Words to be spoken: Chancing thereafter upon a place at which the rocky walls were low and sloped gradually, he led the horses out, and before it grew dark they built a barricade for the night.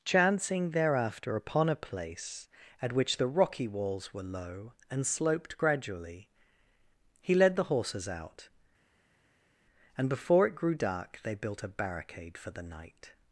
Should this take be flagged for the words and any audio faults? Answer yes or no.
no